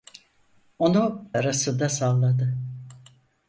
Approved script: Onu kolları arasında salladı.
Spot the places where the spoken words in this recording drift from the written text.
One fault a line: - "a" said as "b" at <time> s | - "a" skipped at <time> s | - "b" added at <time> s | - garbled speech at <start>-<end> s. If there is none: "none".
- "kolları" skipped at 1.3 s